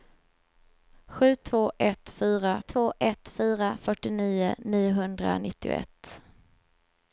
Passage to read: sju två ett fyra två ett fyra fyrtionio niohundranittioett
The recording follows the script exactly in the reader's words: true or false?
true